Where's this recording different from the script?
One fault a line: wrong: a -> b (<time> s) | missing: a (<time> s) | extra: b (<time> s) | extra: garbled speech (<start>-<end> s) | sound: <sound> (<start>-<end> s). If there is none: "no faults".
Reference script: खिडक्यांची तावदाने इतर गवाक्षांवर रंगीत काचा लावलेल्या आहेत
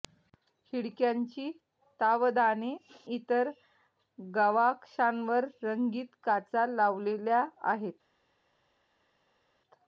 no faults